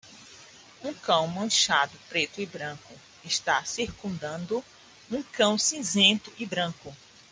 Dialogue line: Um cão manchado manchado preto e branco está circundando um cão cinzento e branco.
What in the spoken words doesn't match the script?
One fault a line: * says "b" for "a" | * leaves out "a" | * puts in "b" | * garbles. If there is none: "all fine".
* leaves out "manchado"